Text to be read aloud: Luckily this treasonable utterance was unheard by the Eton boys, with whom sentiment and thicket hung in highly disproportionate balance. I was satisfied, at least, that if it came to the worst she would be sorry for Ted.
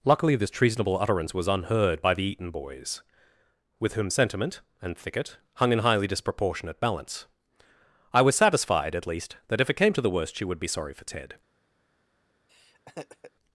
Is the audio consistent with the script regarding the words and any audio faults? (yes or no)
no